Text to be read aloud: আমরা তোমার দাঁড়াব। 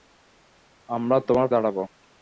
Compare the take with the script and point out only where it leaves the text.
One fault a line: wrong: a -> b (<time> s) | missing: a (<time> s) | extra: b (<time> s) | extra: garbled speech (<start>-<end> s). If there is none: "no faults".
no faults